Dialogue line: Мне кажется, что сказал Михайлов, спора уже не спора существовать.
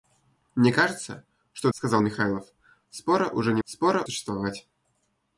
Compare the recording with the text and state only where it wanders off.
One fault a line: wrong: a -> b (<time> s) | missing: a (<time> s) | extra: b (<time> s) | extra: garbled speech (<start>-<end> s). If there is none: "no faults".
no faults